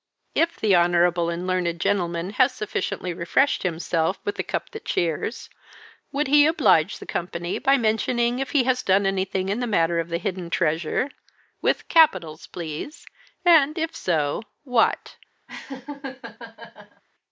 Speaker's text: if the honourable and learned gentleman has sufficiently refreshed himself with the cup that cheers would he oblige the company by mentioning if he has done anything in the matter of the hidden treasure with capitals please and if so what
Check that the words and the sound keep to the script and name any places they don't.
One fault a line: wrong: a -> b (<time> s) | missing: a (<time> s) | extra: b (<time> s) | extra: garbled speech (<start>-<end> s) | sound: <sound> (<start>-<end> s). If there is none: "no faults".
sound: laugh (15.5-17.0 s)